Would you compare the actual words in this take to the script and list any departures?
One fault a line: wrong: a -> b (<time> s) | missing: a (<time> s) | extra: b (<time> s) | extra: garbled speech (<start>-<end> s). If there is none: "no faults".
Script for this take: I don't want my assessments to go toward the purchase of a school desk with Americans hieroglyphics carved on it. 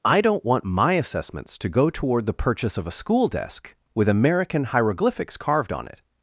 wrong: Americans -> American (4.1 s)